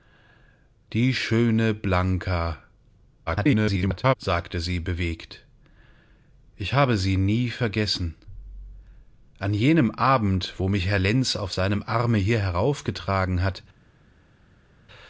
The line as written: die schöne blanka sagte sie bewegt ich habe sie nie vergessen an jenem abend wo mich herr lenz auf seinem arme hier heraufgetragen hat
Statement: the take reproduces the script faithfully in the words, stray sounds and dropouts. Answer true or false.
false